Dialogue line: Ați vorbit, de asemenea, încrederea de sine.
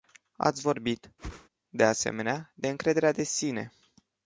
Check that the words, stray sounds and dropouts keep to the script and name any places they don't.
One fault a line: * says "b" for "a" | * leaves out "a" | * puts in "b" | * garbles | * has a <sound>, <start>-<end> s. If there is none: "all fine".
* has a whoosh, 1.2-1.5 s
* puts in "de"